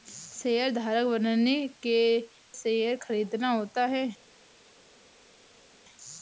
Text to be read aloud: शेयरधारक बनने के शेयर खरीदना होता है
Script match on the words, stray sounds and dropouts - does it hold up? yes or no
yes